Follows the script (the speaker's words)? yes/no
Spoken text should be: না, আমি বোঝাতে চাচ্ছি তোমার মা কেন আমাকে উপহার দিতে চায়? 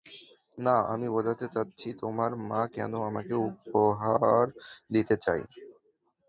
yes